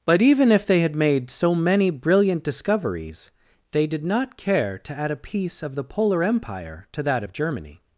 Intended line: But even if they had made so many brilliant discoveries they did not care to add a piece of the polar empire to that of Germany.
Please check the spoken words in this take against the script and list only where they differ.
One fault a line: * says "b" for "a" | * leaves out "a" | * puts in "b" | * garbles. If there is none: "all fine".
all fine